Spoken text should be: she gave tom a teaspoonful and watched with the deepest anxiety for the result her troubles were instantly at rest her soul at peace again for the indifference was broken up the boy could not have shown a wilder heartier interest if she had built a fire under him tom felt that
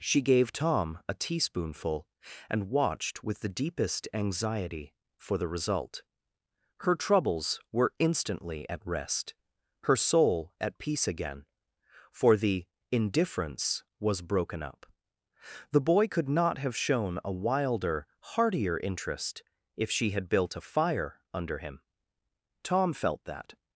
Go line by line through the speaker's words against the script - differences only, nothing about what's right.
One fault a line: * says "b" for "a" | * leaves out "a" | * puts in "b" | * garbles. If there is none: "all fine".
all fine